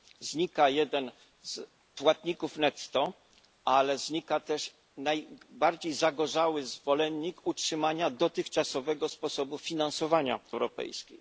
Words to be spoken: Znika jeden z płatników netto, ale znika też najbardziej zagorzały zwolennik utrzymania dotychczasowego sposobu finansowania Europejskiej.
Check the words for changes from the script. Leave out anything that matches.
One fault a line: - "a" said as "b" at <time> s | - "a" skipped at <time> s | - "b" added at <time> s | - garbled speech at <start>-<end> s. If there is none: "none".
none